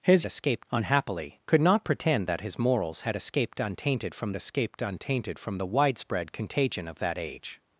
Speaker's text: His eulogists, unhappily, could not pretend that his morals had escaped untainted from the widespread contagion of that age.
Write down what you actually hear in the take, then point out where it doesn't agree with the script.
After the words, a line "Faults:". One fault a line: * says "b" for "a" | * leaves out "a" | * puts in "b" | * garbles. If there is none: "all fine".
His escaped, unhappily, could not pretend that his morals had escaped untainted from escaped untainted from the widespread contagion of that age.
Faults:
* says "escaped" for "eulogists"
* puts in "escaped untainted from"